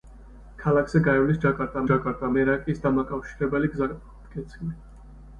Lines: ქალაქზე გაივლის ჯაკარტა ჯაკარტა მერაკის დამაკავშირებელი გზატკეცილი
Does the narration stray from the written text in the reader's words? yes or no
no